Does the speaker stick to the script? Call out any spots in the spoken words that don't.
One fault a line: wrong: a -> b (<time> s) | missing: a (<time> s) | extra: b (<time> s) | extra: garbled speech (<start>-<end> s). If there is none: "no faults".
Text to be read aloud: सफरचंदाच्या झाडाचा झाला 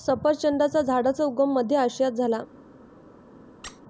extra: उगम मध्य आशियात (1.2 s)